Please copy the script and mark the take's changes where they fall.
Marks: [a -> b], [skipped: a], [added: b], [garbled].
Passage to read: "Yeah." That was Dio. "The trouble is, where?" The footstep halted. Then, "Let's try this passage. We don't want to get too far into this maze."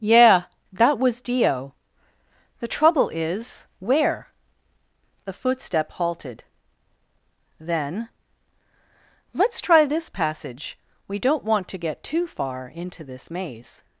"Yeah." That was Dio. "The trouble is, where?" The footstep halted. Then, "Let's try this passage. We don't want to get too far into this maze."